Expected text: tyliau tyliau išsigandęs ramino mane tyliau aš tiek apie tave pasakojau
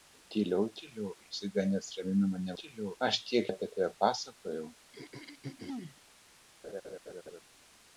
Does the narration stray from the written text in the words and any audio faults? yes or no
yes